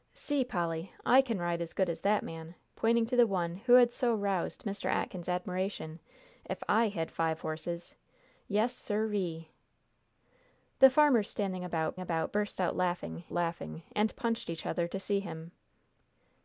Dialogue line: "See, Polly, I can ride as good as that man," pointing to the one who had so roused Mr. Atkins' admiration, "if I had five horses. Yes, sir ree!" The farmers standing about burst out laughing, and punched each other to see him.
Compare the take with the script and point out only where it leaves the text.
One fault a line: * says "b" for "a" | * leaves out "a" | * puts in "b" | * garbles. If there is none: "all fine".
* puts in "about"
* puts in "laughing"